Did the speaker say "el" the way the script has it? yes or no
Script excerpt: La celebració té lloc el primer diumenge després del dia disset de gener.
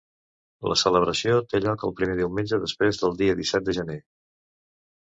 yes